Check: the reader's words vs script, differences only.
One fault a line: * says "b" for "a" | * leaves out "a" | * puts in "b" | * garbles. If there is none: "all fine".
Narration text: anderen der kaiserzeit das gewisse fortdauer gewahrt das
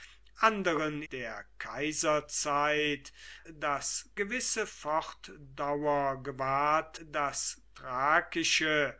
all fine